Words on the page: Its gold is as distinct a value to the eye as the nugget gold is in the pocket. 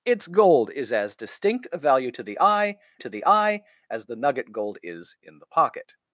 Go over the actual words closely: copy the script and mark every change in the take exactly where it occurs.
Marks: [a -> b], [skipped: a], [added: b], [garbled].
Its gold is as distinct a value to the eye [added: to the eye] as the nugget gold is in the pocket.